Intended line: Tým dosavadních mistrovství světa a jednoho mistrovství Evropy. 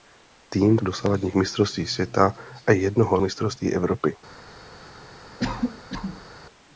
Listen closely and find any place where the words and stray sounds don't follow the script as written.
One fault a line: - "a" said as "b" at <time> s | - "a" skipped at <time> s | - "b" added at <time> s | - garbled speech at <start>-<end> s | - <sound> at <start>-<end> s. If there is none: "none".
- cough at 5.4-6.3 s